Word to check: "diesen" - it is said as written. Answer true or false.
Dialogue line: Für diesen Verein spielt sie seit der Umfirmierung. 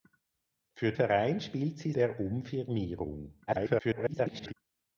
false